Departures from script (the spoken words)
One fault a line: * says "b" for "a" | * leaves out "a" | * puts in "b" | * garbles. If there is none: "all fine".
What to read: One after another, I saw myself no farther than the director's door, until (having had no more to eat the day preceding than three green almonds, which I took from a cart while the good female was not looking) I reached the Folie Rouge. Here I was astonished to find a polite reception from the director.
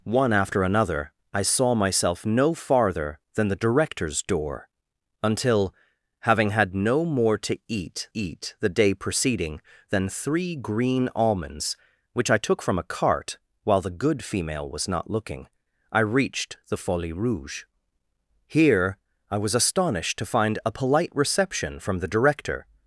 * puts in "eat"